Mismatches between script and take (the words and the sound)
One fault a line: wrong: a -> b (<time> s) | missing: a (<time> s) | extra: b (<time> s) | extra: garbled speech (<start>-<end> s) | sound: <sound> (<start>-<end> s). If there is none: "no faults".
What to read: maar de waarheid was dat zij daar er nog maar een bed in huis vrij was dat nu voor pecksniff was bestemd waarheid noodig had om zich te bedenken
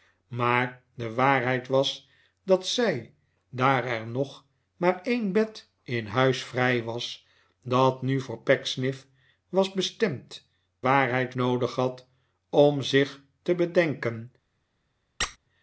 sound: squeak (15.2-15.4 s)